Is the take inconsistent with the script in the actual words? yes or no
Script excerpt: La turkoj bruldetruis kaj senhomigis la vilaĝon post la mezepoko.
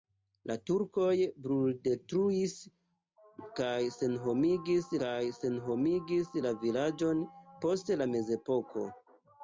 yes